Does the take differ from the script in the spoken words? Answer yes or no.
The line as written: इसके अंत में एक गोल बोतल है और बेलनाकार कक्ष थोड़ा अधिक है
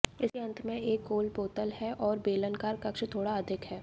no